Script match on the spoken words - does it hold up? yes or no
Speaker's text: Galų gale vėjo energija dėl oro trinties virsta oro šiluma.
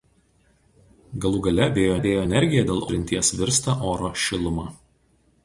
no